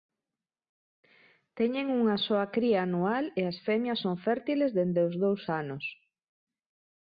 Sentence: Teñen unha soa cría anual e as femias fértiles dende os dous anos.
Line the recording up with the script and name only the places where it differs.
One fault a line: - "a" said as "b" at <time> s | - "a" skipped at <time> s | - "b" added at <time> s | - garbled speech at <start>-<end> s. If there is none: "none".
- "son" added at 4.0 s